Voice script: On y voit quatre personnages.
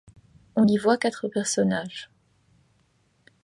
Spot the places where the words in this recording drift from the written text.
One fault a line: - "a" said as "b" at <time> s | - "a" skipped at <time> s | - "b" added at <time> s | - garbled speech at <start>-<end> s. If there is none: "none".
none